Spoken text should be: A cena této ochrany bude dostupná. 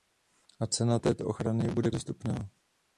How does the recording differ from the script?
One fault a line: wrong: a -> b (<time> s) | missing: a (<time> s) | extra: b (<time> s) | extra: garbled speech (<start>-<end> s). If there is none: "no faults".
no faults